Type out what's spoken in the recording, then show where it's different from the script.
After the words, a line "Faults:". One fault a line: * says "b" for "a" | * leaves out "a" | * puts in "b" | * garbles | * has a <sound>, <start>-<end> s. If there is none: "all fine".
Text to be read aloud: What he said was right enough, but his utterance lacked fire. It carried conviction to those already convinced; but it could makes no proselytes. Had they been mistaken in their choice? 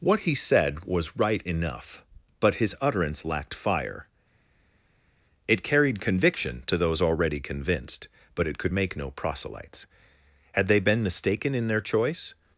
What he said was right enough, but his utterance lacked fire. It carried conviction to those already convinced; but it could make no proselytes. Had they been mistaken in their choice?
Faults:
* says "make" for "makes"